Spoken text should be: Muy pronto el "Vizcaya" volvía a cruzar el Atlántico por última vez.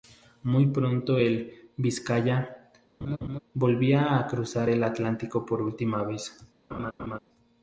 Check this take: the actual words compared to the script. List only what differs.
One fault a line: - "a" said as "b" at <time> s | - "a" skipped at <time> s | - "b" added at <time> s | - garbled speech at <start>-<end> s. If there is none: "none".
none